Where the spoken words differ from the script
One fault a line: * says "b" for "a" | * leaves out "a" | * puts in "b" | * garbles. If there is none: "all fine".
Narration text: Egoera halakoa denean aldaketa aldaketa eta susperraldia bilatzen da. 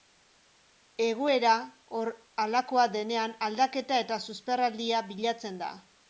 * leaves out "aldaketa"